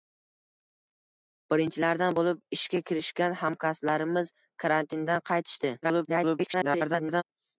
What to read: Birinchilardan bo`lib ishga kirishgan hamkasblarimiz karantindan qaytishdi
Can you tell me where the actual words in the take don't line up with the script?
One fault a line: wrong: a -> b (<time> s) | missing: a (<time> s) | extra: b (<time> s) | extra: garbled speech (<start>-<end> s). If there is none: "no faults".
extra: garbled speech (5.8-7.2 s)